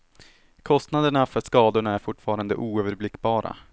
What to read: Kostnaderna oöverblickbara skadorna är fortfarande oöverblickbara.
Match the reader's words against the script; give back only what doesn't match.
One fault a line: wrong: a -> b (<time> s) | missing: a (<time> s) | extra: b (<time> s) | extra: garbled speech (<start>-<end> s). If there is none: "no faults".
wrong: oöverblickbara -> för (1.2 s)